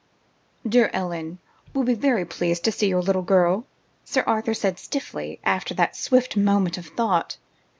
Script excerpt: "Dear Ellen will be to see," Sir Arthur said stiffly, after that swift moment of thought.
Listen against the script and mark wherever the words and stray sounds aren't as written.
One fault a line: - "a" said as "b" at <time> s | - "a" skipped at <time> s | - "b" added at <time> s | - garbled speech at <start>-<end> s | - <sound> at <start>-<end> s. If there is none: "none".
- "very pleased" added at 1.9 s
- "your little girl" added at 2.9 s